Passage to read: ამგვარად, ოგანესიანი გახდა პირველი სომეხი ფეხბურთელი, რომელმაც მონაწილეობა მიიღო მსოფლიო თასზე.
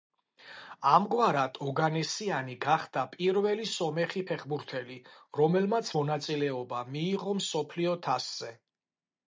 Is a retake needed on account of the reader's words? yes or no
no